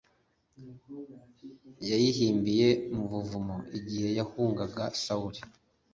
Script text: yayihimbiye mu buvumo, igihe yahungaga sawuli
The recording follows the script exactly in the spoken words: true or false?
true